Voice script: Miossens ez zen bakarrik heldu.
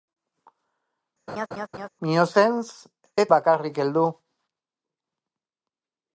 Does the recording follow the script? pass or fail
fail